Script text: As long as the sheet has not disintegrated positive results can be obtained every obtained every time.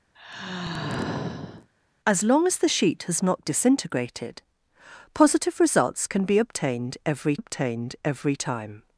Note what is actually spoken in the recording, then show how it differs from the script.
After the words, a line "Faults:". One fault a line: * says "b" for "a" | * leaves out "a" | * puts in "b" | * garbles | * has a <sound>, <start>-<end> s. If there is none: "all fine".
As long as the sheet has not disintegrated positive results can be obtained every obtained every time.
Faults:
* has a sigh, 0.2-1.7 s